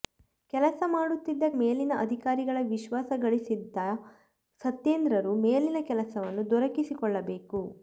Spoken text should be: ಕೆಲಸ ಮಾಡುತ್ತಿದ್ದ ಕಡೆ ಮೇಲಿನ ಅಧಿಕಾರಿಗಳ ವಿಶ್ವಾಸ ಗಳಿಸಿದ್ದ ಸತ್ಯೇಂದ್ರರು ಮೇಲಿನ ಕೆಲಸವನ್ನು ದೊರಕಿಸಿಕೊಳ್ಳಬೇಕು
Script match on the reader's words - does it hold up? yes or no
no